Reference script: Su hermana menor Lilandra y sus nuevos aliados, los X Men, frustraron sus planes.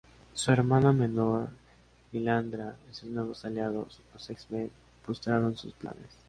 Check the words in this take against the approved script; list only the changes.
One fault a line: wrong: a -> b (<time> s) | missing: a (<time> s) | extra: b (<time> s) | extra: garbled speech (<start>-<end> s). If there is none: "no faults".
no faults